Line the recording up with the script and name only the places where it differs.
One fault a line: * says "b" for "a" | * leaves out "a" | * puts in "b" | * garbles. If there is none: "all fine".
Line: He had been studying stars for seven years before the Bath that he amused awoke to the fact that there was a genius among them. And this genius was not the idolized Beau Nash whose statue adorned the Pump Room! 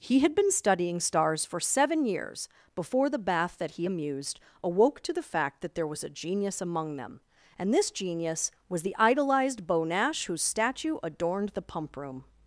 * leaves out "not"